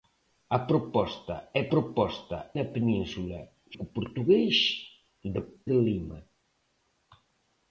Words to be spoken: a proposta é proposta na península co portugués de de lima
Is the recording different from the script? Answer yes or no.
no